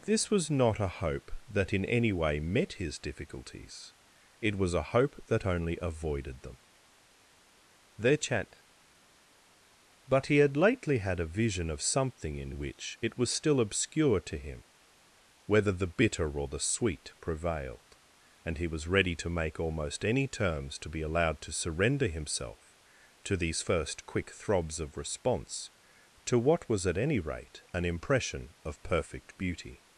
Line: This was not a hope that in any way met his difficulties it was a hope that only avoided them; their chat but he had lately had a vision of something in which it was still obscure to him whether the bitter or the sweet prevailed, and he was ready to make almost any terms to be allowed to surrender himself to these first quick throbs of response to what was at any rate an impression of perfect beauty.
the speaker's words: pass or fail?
pass